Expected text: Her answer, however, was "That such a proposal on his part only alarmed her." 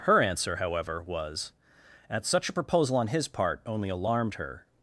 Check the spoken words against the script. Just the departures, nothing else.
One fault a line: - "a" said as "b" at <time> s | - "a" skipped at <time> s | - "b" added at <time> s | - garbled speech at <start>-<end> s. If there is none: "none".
- "That" said as "At" at 2.1 s